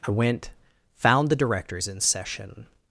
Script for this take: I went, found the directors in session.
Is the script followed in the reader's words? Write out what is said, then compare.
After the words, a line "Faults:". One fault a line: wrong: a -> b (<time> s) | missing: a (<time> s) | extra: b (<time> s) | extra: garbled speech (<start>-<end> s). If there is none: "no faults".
I went, found the directors in session.
Faults:
no faults